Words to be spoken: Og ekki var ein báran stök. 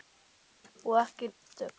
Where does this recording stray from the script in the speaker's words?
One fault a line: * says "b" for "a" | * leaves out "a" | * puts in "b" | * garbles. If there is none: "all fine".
* leaves out "var ein báran"